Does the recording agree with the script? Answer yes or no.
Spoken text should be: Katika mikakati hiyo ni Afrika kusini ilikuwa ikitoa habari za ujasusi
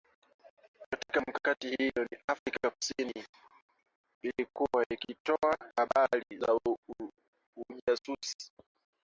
yes